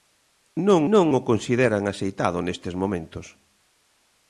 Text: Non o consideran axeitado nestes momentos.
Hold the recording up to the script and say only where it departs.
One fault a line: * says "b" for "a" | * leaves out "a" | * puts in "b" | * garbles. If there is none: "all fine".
* puts in "non"